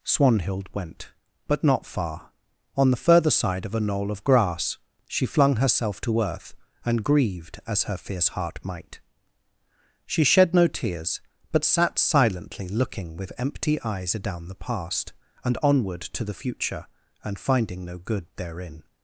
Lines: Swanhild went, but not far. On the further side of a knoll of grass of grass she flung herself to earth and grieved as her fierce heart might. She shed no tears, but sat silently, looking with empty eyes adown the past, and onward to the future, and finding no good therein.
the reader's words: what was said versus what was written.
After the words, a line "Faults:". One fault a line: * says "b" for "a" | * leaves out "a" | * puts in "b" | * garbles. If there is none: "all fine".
Swanhild went, but not far. On the further side of a knoll of grass she flung herself to earth and grieved as her fierce heart might. She shed no tears, but sat silently, looking with empty eyes adown the past, and onward to the future, and finding no good therein.
Faults:
* leaves out "of grass"